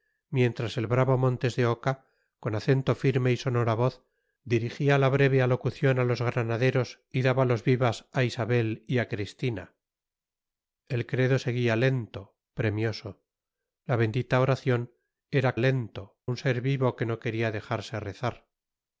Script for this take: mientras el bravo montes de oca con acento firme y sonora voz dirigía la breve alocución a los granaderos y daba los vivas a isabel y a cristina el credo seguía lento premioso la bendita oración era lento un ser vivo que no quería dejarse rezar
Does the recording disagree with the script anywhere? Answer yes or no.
no